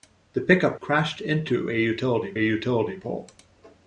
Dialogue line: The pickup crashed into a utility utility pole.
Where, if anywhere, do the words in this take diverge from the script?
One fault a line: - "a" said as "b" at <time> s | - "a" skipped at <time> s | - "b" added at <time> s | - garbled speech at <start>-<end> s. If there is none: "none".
none